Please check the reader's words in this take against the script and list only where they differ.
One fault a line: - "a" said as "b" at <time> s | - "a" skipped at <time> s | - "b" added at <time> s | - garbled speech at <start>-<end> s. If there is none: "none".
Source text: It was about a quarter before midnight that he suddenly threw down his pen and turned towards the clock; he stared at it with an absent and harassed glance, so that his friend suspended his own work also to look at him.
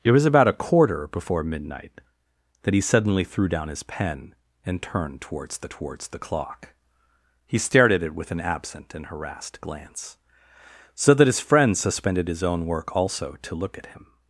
- "towards the" added at 5.7 s